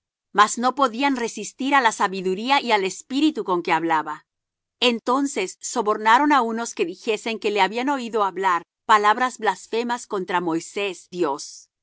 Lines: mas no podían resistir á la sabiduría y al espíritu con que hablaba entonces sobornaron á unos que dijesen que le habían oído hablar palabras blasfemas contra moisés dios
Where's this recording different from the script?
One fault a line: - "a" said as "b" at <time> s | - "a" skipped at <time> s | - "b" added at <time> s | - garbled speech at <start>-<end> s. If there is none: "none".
none